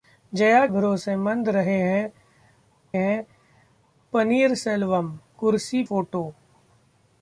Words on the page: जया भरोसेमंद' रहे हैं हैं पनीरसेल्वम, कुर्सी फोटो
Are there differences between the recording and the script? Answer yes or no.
no